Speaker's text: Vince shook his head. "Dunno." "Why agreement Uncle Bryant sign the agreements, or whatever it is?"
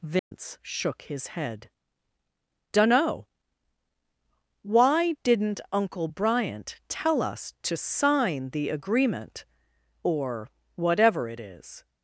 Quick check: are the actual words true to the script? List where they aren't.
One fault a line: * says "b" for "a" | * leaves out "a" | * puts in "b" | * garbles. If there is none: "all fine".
* says "didn't" for "agreement"
* puts in "tell us to"
* says "agreement" for "agreements"